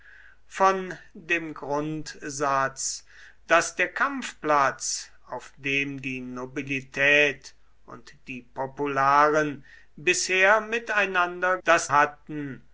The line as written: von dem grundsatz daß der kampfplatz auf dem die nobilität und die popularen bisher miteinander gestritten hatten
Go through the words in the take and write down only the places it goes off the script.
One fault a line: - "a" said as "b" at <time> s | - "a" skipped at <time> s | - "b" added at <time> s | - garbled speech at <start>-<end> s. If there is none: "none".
- "gestritten" said as "daß" at 11.6 s